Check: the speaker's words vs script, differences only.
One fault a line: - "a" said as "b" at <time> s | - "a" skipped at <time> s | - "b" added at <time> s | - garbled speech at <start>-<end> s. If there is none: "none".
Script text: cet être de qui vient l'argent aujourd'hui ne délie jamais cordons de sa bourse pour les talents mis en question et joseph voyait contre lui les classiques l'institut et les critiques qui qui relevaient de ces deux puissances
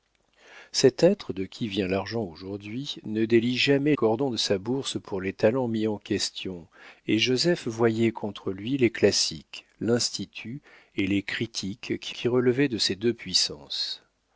none